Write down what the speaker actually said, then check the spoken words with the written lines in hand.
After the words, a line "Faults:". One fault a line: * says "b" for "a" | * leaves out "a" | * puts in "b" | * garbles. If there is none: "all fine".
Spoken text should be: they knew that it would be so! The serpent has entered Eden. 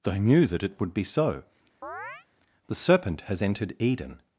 they knew that it would be so! The serpent has entered Eden.
Faults:
all fine